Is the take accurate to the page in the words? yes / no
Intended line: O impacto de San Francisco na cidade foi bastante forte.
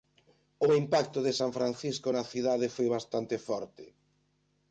yes